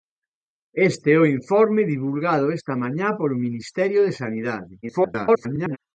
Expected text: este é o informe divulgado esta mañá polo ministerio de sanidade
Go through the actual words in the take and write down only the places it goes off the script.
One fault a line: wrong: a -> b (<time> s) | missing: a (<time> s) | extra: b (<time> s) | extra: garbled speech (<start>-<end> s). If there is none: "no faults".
extra: garbled speech (4.8-5.8 s)